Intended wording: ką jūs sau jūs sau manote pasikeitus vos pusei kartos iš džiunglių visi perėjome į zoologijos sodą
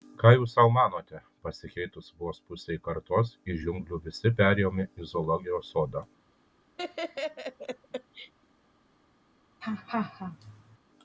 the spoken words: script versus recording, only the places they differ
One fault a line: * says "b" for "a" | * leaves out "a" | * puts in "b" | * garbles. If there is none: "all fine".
* leaves out "jūs sau"